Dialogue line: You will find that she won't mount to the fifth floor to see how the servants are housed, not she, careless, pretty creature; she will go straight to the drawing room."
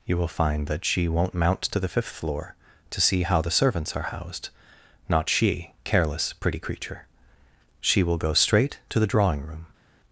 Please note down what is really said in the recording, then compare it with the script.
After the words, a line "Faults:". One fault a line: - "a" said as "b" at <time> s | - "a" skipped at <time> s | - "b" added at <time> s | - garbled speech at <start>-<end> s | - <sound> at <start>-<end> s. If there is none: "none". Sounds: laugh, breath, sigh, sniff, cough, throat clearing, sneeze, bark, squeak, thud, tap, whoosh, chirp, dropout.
You will find that she won't mount to the fifth floor to see how the servants are housed, not she, careless, pretty creature; she will go straight to the drawing room."
Faults:
none